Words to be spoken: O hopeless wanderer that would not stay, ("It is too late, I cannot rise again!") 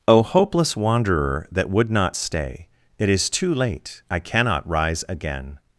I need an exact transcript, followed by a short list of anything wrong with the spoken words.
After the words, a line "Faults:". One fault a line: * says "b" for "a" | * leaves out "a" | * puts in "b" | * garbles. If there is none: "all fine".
O hopeless wanderer that would not stay, ("It is too late, I cannot rise again!")
Faults:
all fine